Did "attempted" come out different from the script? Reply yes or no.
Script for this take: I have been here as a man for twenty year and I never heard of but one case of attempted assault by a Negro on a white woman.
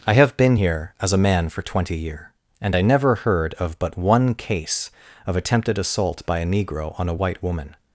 no